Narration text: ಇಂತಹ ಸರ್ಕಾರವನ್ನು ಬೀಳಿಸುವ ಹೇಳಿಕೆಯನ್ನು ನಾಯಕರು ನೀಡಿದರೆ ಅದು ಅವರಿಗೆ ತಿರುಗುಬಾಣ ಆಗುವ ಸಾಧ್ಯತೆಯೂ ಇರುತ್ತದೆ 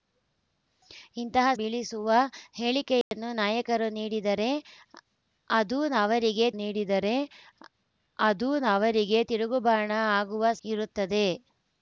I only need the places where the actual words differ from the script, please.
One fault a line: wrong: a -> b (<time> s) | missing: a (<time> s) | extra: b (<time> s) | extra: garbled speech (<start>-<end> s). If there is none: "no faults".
missing: ಸರ್ಕಾರವನ್ನು (1.5 s)
extra: ನೀಡಿದರೆ ಅದು ಅವರಿಗೆ (6.6 s)
missing: ಸಾಧ್ಯತೆಯೂ (10.5 s)